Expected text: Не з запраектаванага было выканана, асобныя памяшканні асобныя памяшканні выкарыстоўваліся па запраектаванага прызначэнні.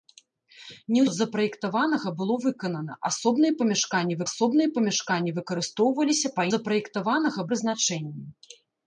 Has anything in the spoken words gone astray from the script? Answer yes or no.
no